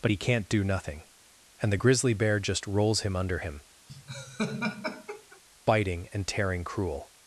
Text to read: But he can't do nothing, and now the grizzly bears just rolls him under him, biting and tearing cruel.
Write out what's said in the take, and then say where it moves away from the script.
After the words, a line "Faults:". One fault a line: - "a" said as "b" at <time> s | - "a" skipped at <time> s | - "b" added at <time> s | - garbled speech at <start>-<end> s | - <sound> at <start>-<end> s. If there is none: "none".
But he can't do nothing, and the grizzly bear just rolls him under him, biting and tearing cruel.
Faults:
- "now" skipped at 1.7 s
- "bears" said as "bear" at 2.1 s
- laugh at 3.9-5.4 s